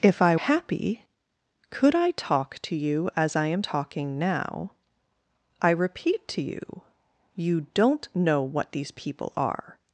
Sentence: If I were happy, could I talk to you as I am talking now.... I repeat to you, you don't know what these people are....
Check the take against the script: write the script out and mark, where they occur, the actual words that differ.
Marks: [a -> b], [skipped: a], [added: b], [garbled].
If I [skipped: were] happy, could I talk to you as I am talking now.... I repeat to you, you don't know what these people are....